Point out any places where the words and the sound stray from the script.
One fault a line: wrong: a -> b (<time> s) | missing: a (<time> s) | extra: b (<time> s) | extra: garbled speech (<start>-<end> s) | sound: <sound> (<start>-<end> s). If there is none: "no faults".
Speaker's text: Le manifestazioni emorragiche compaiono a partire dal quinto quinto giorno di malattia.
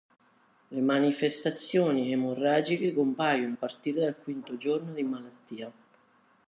missing: quinto (4.6 s)